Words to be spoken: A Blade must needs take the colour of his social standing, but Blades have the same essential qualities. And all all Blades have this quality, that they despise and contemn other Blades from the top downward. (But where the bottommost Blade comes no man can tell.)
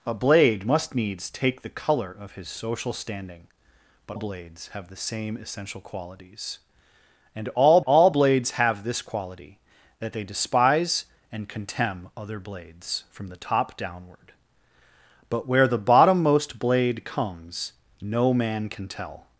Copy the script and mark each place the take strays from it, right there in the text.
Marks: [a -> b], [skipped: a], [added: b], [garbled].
A Blade must needs take the colour of his social standing, but Blades have the same essential qualities. And all all Blades have this quality, that they despise and contemn other Blades from the top downward. (But where the bottommost Blade comes no man can tell.)